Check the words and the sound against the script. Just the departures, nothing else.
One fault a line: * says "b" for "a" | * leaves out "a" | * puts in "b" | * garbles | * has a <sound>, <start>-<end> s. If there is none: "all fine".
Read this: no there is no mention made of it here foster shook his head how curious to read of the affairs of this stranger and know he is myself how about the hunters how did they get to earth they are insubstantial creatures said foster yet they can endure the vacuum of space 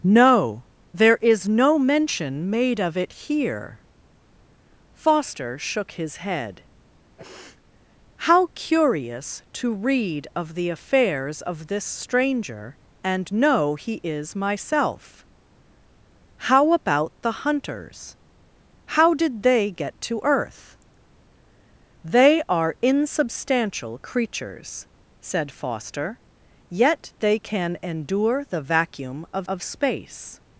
* has a sniff, 7.2-7.6 s
* puts in "of"